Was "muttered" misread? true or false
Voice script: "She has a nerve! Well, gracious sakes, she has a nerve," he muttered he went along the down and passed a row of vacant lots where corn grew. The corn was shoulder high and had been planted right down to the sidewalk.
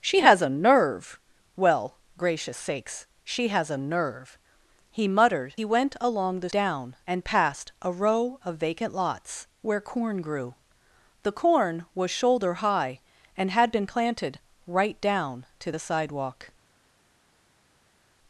false